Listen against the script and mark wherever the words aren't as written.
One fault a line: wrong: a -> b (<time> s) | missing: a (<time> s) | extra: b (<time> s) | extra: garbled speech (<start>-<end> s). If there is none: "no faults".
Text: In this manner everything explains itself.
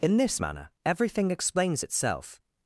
no faults